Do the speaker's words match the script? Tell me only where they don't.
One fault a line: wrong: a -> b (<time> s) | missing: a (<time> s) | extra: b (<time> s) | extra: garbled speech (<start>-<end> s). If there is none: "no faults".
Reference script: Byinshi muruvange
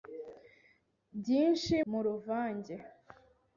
no faults